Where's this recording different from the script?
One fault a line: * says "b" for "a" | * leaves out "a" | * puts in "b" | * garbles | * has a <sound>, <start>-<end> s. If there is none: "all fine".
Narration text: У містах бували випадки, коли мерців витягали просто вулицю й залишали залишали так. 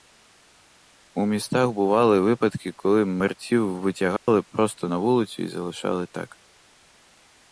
* has a dropout, 4.2-4.3 s
* puts in "на"
* leaves out "залишали"